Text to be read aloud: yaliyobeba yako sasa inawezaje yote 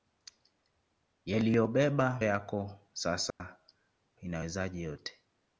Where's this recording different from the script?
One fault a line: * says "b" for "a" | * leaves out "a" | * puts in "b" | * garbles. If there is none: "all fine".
all fine